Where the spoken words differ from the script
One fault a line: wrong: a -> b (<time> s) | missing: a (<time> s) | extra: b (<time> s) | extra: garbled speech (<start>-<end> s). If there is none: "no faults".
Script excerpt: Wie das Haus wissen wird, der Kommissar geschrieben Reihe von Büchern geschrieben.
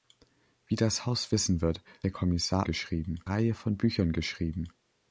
no faults